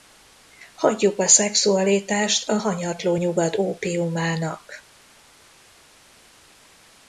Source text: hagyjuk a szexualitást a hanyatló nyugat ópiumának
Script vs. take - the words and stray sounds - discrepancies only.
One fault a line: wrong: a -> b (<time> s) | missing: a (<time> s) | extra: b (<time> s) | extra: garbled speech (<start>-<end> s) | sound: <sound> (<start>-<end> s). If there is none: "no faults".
no faults